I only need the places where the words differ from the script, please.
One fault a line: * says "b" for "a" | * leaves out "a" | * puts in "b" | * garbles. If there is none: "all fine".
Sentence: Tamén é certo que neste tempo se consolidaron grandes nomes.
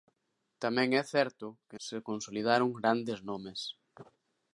* leaves out "neste tempo"